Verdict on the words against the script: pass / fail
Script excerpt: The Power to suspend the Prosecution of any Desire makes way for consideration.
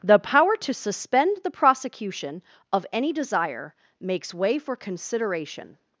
pass